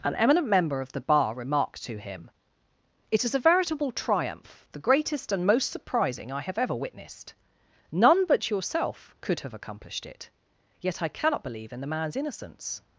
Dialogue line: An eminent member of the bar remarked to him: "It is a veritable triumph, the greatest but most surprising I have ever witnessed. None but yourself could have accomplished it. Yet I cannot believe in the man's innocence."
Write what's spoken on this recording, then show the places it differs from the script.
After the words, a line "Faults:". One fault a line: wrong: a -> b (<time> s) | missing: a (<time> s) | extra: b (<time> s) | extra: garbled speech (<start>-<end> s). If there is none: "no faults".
An eminent member of the bar remarked to him: "It is a veritable triumph, the greatest and most surprising I have ever witnessed. None but yourself could have accomplished it. Yet I cannot believe in the man's innocence."
Faults:
wrong: but -> and (5.3 s)